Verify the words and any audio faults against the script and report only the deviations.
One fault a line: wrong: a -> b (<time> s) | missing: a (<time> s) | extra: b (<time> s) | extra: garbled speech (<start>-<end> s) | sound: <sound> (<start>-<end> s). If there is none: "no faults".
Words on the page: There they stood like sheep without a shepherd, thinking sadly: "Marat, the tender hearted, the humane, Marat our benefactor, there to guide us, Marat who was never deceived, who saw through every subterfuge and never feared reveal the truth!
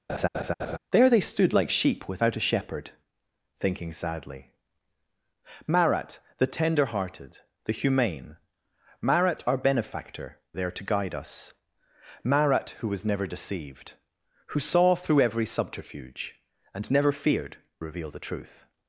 sound: laugh (0.1-0.8 s)